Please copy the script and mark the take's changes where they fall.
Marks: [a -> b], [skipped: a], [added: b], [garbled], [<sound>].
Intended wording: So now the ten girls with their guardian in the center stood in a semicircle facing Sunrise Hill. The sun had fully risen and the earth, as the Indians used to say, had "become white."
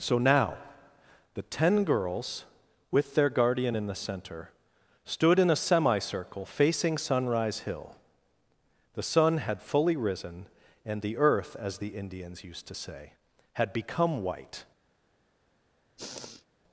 So now the ten girls with their guardian in the center stood in a semicircle facing Sunrise Hill. The sun had fully risen and the earth, as the Indians used to say, had "become white." [sniff]